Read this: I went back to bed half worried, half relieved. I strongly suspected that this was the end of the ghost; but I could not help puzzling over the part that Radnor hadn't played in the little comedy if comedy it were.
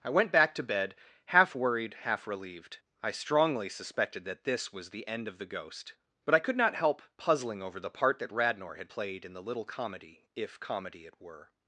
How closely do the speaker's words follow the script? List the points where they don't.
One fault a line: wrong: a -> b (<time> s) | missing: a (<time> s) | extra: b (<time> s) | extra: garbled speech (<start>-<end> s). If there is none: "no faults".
wrong: hadn't -> had (8.8 s)